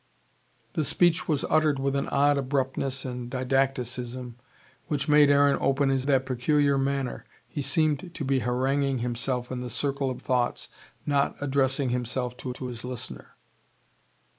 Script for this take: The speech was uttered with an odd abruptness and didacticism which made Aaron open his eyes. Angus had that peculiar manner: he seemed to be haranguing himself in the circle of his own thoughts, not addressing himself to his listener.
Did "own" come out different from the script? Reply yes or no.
yes